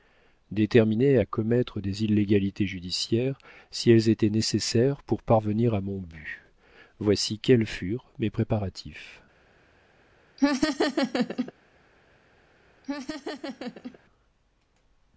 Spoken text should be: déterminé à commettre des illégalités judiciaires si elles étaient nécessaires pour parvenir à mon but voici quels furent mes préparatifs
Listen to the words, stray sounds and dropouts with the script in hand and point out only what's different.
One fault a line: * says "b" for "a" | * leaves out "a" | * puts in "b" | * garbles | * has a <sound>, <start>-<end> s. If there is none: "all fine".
* has a laugh, 10.4-11.5 s
* has a laugh, 12.8-14.0 s